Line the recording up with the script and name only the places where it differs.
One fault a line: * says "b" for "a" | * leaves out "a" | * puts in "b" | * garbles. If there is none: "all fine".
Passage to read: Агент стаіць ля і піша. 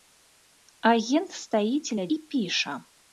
all fine